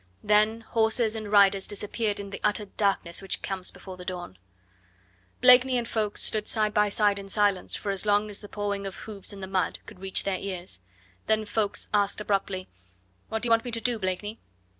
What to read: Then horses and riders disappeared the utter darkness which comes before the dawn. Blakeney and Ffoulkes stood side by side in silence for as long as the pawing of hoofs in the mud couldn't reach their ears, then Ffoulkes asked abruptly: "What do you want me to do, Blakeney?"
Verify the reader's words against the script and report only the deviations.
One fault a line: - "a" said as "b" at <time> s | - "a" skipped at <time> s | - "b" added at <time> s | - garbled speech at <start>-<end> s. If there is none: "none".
- "in" added at 2.2 s
- "couldn't" said as "could" at 9.8 s